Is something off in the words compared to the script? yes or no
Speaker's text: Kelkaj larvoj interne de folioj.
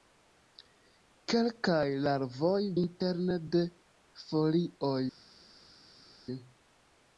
no